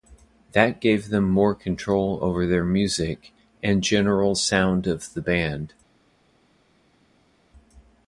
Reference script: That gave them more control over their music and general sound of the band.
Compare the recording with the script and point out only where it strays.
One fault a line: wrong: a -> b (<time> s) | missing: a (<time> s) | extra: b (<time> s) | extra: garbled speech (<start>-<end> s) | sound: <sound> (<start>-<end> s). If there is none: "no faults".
no faults